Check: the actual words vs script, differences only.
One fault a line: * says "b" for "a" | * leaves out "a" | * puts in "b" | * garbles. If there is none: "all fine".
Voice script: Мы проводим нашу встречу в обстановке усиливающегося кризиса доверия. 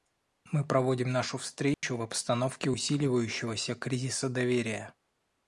all fine